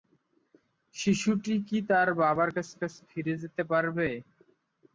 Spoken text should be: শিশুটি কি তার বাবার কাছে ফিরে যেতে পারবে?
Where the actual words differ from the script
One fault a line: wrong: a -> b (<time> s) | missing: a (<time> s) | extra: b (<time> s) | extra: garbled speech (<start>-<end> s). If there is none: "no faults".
extra: কাছে (2.8 s)